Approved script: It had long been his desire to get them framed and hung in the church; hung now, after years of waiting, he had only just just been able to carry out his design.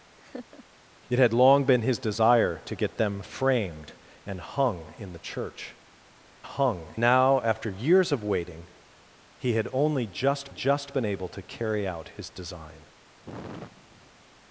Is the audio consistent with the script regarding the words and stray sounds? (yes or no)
no